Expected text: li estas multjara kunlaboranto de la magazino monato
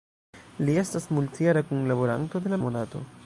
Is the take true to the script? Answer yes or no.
no